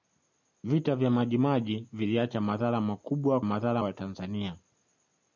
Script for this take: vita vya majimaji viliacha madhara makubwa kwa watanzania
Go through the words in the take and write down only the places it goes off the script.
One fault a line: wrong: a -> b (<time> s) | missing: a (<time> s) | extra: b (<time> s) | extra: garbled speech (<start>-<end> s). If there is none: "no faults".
wrong: kwa -> madhara (3.4 s)